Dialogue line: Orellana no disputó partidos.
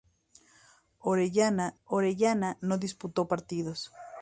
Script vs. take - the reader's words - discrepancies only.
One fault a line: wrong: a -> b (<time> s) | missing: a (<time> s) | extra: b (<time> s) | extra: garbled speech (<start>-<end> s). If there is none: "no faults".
extra: orellana (1.8 s)